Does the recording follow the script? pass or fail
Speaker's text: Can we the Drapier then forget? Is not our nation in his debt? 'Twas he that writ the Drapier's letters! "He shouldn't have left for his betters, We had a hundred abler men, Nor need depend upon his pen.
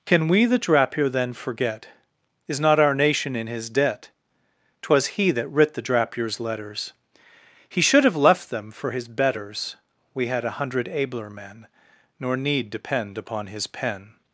fail